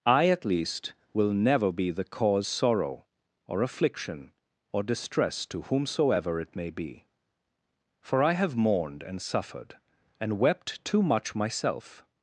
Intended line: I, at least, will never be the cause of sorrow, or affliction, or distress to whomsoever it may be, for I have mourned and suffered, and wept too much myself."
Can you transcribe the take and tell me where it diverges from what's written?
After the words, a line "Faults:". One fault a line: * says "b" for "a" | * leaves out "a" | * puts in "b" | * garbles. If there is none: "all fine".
I, at least, will never be the cause sorrow, or affliction, or distress to whomsoever it may be, for I have mourned and suffered, and wept too much myself."
Faults:
* leaves out "of"